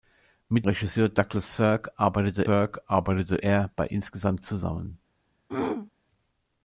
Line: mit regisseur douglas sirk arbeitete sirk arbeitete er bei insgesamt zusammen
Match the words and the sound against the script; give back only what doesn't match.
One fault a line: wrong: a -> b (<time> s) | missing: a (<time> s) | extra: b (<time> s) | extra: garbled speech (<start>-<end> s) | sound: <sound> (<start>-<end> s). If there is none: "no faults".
sound: throat clearing (5.5-5.9 s)